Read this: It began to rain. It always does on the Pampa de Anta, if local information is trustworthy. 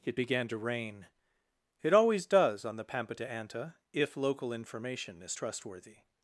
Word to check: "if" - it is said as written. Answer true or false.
true